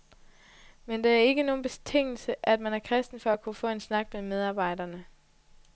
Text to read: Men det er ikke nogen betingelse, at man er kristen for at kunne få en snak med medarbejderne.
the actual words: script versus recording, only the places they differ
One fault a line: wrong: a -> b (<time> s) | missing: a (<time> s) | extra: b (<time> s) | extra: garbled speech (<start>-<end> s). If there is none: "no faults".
no faults